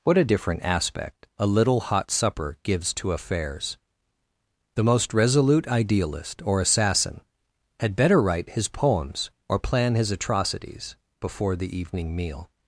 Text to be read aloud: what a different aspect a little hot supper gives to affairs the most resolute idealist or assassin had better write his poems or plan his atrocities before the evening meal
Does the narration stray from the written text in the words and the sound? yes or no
no